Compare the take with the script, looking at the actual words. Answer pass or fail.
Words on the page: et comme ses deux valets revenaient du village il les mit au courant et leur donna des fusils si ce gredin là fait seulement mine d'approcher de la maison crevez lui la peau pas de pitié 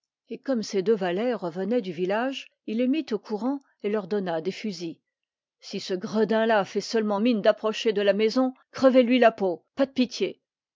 pass